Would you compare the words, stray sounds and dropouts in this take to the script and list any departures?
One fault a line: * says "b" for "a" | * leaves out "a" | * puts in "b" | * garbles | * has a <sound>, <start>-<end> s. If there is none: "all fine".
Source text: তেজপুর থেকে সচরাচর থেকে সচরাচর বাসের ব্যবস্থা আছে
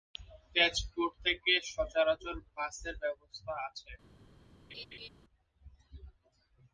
* leaves out "থেকে সচরাচর"
* has a laugh, 4.7-5.1 s